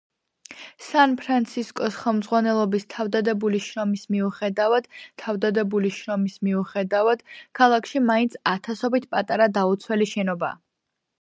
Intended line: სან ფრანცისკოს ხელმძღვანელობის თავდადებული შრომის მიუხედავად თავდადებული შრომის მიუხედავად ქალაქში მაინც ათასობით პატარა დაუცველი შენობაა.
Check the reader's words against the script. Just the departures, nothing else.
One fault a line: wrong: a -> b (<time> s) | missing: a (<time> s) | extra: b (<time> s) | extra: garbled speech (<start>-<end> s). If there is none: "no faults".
no faults